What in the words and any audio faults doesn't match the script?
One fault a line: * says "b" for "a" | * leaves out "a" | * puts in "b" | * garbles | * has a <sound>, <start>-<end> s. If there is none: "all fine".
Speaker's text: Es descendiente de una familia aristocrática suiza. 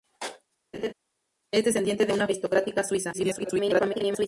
* has a laugh, 0.7-0.9 s
* leaves out "familia"
* garbles